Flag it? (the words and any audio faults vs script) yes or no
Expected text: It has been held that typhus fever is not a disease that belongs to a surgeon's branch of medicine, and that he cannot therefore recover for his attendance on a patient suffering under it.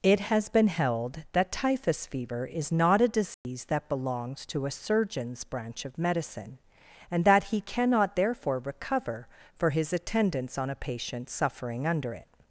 yes